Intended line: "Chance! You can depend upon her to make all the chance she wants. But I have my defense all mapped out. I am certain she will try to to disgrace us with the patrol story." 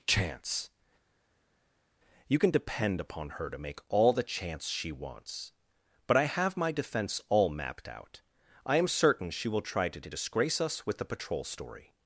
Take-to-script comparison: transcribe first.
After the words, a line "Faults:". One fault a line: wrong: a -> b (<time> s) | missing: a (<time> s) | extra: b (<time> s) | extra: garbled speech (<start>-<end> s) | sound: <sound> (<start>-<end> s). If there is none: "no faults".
"Chance! You can depend upon her to make all the chance she wants. But I have my defense all mapped out. I am certain she will try to to disgrace us with the patrol story."
Faults:
no faults